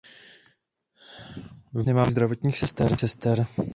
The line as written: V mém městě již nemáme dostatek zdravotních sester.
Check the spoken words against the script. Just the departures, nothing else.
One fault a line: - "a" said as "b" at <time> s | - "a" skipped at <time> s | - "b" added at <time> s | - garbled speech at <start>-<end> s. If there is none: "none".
- "mém městě již" skipped at 1.9 s